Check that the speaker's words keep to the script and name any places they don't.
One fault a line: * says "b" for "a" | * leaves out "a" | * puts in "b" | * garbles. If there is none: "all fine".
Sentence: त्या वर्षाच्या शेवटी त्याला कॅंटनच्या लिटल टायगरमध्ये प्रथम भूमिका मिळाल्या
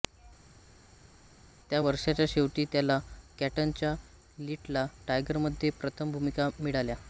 all fine